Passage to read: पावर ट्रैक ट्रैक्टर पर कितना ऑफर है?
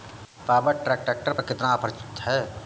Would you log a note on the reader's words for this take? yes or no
no